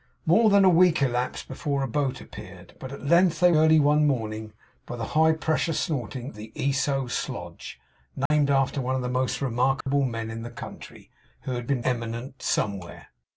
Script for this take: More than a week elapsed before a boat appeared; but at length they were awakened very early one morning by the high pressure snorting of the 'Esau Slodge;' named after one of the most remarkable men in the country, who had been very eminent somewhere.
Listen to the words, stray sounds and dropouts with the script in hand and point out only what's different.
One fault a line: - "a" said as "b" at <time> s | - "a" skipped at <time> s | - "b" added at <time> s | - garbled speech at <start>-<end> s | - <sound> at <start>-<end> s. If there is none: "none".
- "were awakened very" skipped at 3.5 s
- "of" skipped at 6.3 s
- dropout at 8.3-8.3 s
- dropout at 9.8-9.9 s
- "very" skipped at 11.8 s